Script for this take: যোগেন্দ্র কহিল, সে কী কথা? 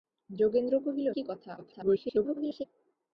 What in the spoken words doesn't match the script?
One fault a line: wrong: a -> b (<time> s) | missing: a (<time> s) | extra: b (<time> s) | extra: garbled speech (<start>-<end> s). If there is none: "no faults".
missing: সে (1.1 s)
extra: garbled speech (1.6-2.6 s)